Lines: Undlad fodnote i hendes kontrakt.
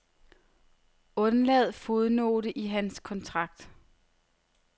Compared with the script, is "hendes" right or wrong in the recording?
wrong